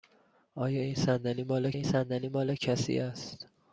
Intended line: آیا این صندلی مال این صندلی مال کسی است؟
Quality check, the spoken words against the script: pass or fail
pass